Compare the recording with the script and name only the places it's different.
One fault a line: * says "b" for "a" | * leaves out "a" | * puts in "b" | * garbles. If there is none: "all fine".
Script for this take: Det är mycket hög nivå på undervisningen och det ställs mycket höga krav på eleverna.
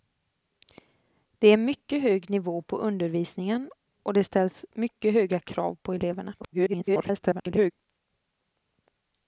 * garbles